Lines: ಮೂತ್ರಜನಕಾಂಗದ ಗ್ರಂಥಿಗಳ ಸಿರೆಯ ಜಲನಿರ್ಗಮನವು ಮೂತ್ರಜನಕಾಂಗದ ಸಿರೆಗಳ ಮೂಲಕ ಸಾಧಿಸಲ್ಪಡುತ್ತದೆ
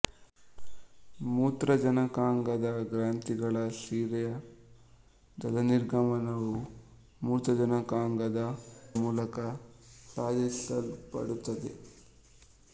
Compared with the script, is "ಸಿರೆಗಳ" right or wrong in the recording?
wrong